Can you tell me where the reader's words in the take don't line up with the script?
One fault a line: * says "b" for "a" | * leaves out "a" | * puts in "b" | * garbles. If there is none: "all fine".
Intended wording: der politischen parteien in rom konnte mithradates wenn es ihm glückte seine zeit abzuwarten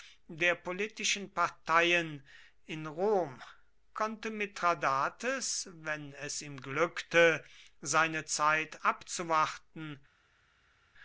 all fine